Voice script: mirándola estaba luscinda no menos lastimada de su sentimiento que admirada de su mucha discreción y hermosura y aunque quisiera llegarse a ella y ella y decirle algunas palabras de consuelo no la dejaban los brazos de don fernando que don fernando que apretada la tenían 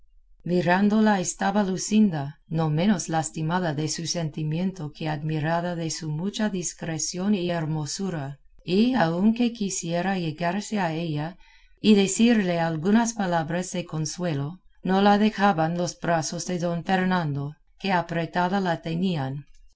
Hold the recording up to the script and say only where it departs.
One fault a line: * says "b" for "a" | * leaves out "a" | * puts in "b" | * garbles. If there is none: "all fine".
* leaves out "ella y"
* leaves out "don fernando que"